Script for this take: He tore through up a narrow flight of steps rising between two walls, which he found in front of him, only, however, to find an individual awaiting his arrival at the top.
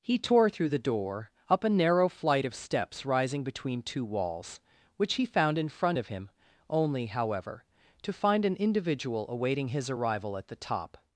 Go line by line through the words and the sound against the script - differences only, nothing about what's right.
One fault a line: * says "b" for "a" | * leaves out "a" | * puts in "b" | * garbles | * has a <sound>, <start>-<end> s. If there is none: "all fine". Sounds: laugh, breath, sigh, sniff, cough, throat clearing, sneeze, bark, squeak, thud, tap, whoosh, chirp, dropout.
* puts in "the door"